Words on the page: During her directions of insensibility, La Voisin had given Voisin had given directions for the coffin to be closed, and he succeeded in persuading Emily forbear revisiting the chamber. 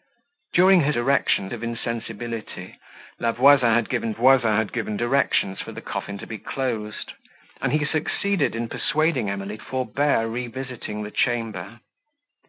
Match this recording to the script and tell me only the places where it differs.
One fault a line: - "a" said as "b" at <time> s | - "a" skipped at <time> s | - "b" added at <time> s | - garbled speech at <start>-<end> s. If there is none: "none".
none